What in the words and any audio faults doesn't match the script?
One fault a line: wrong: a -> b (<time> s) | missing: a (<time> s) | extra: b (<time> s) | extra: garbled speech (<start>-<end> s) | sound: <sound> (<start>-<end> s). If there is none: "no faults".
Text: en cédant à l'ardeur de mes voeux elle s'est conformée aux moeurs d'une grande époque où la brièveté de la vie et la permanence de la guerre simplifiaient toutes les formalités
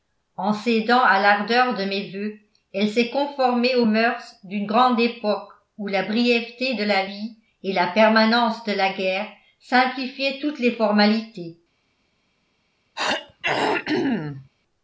sound: throat clearing (13.0-14.5 s)